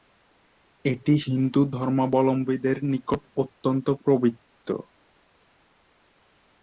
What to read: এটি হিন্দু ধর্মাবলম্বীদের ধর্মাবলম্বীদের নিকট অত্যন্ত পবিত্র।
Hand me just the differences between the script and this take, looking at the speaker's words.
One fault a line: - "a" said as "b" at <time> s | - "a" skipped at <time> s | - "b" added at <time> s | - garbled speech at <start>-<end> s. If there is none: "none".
- "ধর্মাবলম্বীদের" skipped at 2.8 s